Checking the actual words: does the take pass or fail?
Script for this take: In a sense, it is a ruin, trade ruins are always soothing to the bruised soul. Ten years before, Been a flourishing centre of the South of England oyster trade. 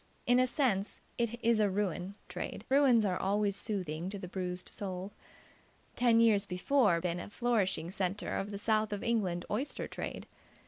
pass